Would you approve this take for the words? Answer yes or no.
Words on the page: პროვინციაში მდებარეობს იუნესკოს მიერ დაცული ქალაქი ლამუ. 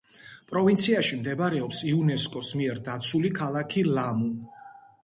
yes